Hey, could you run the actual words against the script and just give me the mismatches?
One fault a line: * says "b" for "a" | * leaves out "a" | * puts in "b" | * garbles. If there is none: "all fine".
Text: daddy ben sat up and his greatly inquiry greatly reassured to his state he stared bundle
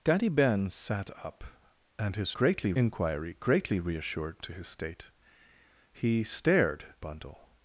all fine